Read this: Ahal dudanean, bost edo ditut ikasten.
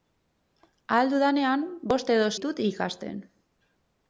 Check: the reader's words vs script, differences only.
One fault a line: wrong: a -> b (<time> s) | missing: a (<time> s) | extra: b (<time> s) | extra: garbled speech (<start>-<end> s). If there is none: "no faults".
no faults